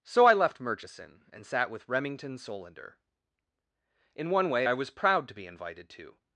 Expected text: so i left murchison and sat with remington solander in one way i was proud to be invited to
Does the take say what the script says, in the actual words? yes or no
yes